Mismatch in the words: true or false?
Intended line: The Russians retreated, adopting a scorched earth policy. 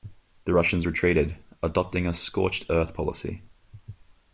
false